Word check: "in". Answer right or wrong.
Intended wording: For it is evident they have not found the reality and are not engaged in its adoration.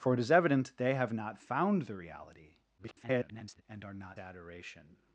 wrong